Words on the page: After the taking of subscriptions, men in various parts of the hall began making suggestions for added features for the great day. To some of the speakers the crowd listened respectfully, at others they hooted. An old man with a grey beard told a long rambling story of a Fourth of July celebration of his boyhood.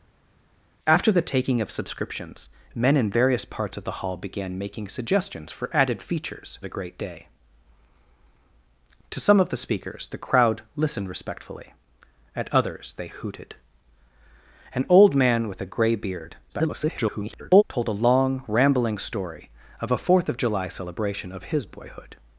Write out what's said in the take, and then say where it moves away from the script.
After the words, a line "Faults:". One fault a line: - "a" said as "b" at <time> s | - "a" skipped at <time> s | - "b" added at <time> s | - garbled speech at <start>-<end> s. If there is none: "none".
After the taking of subscriptions, men in various parts of the hall began making suggestions for added features the great day. To some of the speakers the crowd listened respectfully, at others they hooted. An old man with a grey beard [garbled] told a long rambling story of a Fourth of July celebration of his boyhood.
Faults:
- "for" skipped at 6.6 s
- garbled speech at 16.5-17.6 s